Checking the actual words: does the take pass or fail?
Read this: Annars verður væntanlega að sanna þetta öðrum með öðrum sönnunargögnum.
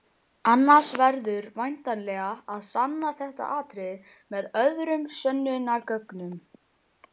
fail